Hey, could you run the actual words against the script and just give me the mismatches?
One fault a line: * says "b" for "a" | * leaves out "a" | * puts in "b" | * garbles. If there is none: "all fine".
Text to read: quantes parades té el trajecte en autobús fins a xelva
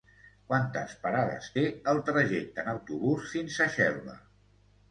all fine